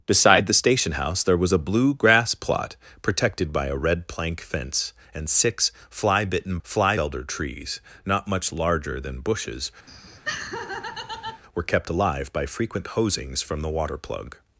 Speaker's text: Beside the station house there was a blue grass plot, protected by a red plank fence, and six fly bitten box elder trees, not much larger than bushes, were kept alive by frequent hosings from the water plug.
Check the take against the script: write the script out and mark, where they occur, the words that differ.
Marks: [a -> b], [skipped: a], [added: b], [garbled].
Beside the station house there was a blue grass plot, protected by a red plank fence, and six fly bitten [box -> fly] elder trees, not much larger than bushes, were kept alive by frequent hosings from the water plug.